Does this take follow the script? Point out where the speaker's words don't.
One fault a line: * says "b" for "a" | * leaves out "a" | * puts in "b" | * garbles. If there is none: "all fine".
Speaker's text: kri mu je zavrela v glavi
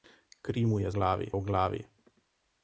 * says "glavi" for "zavrela"